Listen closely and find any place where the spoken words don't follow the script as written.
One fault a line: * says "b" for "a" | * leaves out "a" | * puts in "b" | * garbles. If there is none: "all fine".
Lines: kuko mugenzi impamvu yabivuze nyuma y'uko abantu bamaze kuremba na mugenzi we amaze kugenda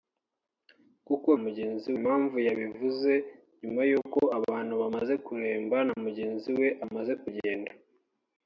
all fine